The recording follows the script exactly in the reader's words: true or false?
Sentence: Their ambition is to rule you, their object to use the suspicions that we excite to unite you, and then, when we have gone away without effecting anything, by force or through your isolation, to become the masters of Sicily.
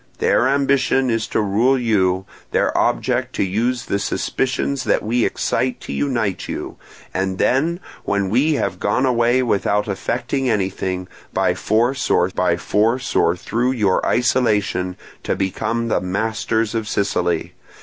false